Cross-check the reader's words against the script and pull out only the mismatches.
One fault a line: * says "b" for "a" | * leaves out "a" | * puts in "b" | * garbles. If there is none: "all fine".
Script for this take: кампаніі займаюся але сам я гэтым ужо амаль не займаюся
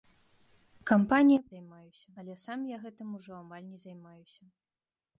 all fine